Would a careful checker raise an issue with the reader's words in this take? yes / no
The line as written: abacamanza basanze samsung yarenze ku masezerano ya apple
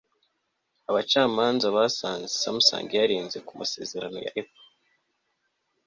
no